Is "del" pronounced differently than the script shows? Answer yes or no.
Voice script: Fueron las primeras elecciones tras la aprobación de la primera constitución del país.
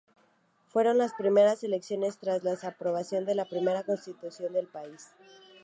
no